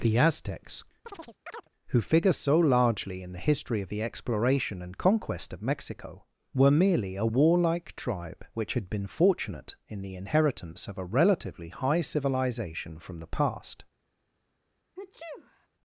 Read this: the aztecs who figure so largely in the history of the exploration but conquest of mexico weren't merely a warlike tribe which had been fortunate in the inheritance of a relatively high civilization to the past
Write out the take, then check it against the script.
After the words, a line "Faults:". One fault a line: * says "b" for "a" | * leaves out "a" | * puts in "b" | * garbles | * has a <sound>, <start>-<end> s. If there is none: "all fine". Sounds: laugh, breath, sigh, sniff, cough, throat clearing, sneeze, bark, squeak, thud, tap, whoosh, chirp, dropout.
the aztecs who figure so largely in the history of the exploration and conquest of mexico were merely a warlike tribe which had been fortunate in the inheritance of a relatively high civilization from the past
Faults:
* has a chirp, 1.0-1.7 s
* says "and" for "but"
* says "were" for "weren't"
* says "from" for "to"
* has a sneeze, 15.0-15.7 s